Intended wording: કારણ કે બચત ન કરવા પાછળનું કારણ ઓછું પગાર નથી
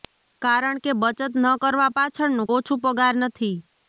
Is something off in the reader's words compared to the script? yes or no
yes